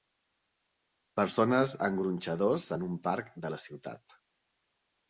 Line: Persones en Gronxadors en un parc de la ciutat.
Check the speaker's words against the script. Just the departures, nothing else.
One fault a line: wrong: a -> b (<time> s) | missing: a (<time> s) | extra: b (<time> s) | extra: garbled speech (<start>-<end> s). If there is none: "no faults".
no faults